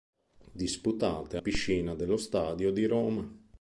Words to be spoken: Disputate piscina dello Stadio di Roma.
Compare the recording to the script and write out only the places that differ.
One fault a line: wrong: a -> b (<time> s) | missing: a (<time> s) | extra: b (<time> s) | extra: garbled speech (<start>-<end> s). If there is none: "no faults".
no faults